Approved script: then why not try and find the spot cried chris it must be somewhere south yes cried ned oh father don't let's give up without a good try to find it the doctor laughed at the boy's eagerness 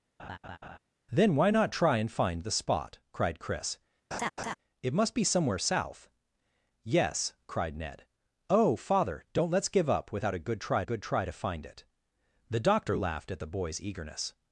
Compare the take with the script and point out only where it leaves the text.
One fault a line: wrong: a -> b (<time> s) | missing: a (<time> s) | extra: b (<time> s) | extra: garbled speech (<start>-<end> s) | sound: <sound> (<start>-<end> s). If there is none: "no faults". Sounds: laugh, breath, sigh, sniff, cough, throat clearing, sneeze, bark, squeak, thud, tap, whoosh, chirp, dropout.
sound: laugh (0.2-0.8 s)
sound: laugh (4.1-4.5 s)
extra: good try (10.8 s)